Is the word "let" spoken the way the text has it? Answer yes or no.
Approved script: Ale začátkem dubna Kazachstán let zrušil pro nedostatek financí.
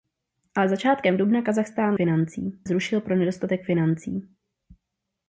no